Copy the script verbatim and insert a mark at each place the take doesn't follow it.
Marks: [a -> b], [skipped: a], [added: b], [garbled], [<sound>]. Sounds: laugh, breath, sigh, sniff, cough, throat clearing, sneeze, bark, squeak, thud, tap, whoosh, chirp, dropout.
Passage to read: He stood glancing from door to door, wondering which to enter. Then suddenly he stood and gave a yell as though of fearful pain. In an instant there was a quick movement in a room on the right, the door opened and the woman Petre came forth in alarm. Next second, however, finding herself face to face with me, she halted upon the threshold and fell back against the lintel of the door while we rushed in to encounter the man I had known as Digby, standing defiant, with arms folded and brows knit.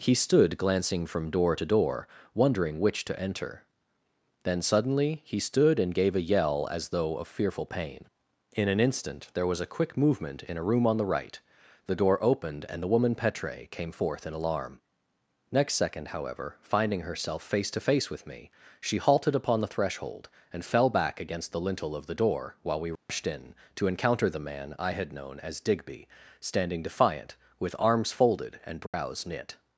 He stood glancing from door to door, wondering which to enter. Then suddenly he stood and gave a yell as though of fearful pain. In an instant there was a quick movement in a room on the right, the door opened and the woman Petre came forth in alarm. Next second, however, finding herself face to face with me, she halted upon the threshold and fell back against the lintel of the door while we rushed [dropout] in to encounter the man I had known as Digby, standing defiant, with arms folded and brows [dropout] knit.